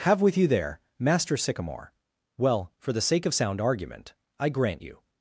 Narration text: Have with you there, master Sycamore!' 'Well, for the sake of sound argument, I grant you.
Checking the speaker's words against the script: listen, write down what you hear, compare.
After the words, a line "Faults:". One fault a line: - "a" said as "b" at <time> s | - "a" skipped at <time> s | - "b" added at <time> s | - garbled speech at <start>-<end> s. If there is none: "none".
Have with you there, master Sycamore!' 'Well, for the sake of sound argument, I grant you.
Faults:
none